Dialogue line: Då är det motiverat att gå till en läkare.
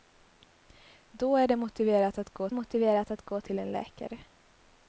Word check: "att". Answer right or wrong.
right